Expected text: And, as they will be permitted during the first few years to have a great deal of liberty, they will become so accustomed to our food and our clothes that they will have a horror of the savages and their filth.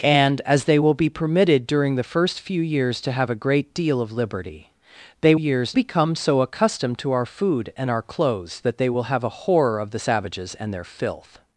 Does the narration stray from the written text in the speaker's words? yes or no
yes